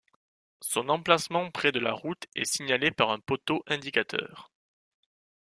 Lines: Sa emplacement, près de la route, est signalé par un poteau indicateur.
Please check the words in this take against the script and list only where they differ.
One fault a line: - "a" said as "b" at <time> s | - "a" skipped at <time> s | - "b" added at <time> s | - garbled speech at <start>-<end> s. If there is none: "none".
- "Sa" said as "Son" at 0.6 s